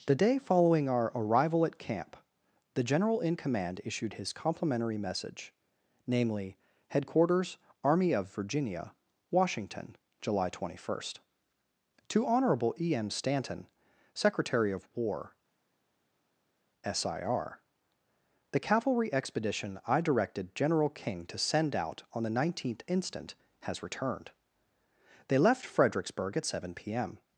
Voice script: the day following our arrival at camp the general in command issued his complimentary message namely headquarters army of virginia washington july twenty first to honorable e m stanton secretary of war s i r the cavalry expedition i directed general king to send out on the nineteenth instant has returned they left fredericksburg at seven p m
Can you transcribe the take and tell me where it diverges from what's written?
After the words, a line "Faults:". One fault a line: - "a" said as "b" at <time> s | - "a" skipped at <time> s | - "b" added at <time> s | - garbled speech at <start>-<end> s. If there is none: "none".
the day following our arrival at camp the general in command issued his complimentary message namely headquarters army of virginia washington july twenty first to honorable e m stanton secretary of war s i r the cavalry expedition i directed general king to send out on the nineteenth instant has returned they left fredericksburg at seven p m
Faults:
none